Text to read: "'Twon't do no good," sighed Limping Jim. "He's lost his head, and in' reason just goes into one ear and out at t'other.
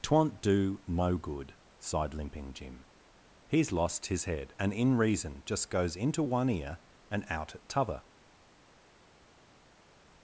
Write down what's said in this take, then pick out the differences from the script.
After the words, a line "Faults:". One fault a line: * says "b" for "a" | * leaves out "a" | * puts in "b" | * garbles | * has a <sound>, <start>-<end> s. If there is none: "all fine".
"'Twon't do no good," sighed Limping Jim. "He's lost his head, and in' reason just goes into one ear and out at t'other.
Faults:
all fine